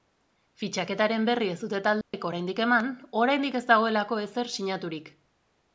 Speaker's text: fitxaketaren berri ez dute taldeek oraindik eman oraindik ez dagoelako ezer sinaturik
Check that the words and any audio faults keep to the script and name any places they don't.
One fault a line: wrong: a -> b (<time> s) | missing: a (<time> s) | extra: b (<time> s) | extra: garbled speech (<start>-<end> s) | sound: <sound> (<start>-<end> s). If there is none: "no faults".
sound: dropout (2.0-2.1 s)